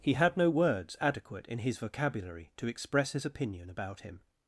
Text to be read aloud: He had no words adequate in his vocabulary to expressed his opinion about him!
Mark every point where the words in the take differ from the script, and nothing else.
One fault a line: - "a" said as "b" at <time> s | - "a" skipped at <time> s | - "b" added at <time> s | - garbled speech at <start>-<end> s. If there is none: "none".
- "expressed" said as "express" at 2.7 s